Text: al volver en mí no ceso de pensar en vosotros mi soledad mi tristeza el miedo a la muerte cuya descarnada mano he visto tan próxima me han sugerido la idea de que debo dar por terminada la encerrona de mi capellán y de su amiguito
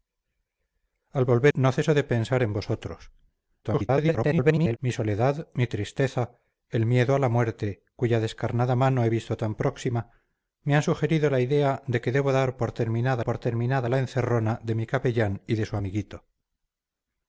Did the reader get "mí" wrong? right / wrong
wrong